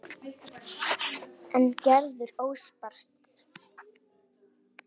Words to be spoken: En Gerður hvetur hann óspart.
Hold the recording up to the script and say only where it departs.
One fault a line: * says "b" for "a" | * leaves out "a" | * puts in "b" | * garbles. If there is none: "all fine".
* leaves out "hvetur hann"